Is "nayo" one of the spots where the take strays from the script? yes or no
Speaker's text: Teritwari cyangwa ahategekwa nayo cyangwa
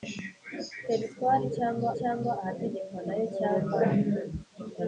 no